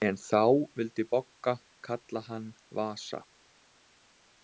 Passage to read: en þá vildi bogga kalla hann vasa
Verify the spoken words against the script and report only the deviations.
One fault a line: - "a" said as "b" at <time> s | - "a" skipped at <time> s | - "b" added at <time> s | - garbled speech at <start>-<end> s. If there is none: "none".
none